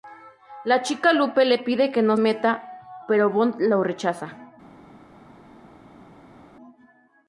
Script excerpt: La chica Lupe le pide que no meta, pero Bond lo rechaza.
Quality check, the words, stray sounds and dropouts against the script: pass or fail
pass